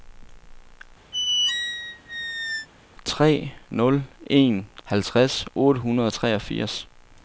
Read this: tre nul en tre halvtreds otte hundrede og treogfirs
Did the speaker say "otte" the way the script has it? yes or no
yes